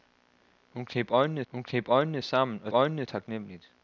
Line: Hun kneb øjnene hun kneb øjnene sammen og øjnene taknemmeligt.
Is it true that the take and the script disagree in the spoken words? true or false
false